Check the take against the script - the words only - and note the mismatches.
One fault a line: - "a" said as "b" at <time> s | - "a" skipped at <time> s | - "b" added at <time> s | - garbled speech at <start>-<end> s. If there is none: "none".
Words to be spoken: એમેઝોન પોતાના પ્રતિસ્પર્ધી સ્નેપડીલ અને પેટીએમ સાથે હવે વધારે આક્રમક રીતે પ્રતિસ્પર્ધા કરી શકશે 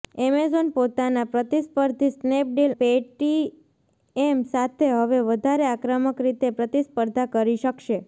- "અને" skipped at 2.7 s